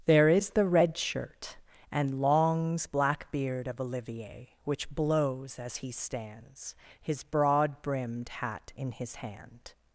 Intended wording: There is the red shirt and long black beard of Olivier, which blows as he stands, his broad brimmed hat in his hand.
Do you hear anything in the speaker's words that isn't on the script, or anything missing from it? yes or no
yes